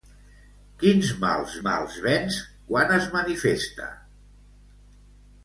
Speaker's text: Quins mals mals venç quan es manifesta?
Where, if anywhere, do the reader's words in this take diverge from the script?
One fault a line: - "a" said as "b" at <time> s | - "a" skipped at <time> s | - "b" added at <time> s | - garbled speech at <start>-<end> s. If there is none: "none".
none